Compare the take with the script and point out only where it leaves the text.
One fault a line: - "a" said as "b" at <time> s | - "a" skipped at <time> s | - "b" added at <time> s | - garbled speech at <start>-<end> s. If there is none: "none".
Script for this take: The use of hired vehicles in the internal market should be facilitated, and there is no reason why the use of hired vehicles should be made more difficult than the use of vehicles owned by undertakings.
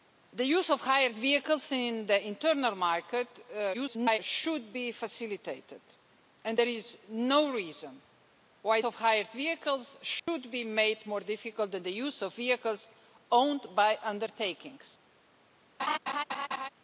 - garbled speech at 3.7-4.2 s
- "the use" skipped at 8.8 s